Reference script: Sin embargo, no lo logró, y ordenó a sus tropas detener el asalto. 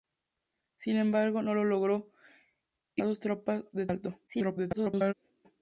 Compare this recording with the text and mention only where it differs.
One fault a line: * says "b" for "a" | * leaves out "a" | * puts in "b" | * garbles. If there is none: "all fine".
* leaves out "ordenó"
* garbles